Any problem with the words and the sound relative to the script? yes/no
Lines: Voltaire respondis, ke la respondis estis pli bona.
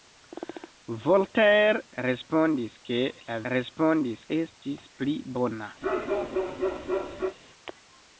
yes